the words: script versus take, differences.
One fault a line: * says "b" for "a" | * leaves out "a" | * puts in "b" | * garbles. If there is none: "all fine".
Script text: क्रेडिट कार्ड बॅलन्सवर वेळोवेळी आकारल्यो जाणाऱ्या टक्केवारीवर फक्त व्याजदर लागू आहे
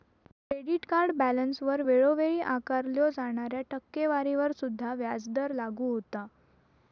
* says "सुद्धा" for "फक्त"
* says "होता" for "आहे"